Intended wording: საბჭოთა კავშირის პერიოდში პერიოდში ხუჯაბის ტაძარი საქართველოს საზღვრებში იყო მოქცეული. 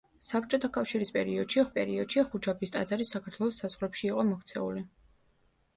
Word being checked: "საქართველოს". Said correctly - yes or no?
yes